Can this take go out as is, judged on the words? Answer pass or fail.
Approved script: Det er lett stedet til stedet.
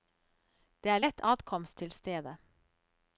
fail